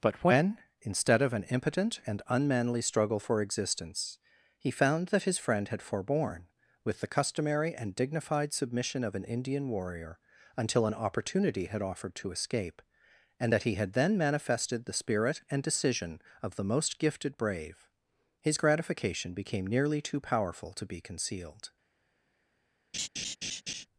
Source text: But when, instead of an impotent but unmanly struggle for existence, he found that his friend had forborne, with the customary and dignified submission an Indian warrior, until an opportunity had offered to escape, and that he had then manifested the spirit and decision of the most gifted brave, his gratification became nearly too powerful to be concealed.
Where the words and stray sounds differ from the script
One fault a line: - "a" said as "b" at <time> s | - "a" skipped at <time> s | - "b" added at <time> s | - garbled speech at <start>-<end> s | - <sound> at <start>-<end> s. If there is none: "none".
- "but" said as "and" at 2.1 s
- "of" added at 9.0 s
- laugh at 22.9-23.9 s